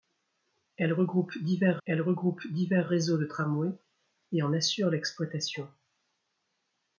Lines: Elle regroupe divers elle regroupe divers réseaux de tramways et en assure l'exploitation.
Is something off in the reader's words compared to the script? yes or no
no